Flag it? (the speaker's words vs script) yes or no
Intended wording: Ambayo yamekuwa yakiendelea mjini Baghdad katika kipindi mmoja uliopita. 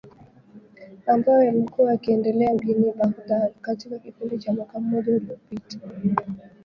yes